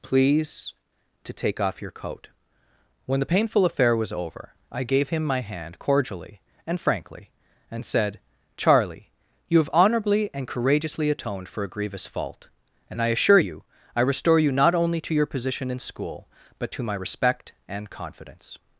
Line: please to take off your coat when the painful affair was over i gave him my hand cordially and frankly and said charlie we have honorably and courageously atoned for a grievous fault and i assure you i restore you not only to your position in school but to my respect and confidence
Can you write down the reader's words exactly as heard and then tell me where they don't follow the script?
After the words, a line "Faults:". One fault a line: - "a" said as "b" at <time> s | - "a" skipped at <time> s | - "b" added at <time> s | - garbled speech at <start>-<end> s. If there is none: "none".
please to take off your coat when the painful affair was over i gave him my hand cordially and frankly and said charlie you have honorably and courageously atoned for a grievous fault and i assure you i restore you not only to your position in school but to my respect and confidence
Faults:
- "we" said as "you" at 9.5 s